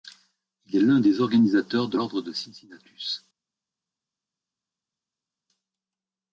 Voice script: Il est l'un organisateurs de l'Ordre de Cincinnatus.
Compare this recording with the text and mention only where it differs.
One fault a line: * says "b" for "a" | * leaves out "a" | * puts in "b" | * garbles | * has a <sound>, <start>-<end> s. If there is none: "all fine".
* puts in "des"